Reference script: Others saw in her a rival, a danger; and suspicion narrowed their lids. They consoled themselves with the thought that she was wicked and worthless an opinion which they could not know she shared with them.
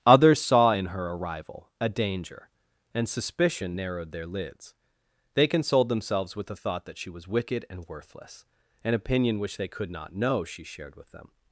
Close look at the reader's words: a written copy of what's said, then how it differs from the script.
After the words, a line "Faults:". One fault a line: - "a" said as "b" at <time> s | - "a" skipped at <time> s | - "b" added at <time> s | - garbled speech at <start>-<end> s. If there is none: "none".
Others saw in her a rival, a danger; and suspicion narrowed their lids. They consoled themselves with the thought that she was wicked and worthless an opinion which they could not know she shared with them.
Faults:
none